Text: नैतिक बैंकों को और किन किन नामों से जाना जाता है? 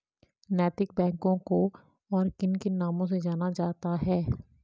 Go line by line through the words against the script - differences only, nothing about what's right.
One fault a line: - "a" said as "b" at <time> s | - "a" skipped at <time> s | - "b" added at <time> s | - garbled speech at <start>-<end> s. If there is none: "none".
none